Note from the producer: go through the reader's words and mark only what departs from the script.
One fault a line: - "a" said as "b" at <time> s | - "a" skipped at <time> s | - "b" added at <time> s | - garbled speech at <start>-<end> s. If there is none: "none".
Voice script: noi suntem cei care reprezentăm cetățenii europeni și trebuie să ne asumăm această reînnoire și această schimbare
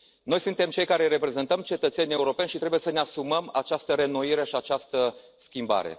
none